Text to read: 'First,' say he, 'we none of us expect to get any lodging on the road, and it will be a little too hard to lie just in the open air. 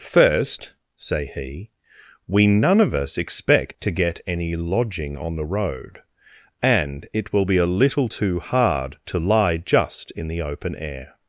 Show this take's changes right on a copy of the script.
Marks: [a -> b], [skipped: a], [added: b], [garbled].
'First,' say he, 'we none of us expect to get any lodging on the road, and it will be a little too hard to lie just in the open air.